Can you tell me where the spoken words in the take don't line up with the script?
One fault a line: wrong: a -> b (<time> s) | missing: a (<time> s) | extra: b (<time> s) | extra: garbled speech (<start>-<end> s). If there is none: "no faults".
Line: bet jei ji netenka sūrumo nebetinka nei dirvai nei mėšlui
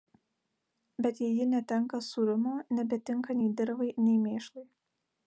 no faults